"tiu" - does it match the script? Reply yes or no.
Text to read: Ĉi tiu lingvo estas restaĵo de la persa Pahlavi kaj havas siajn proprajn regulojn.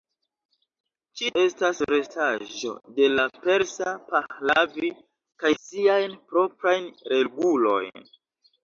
no